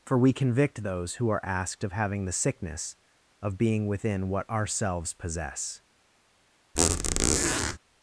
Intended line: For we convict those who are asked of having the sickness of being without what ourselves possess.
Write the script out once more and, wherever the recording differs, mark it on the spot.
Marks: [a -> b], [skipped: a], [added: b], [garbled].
For we convict those who are asked of having the sickness of being [without -> within] what ourselves possess.